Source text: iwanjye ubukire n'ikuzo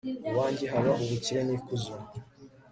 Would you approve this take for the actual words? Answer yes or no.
no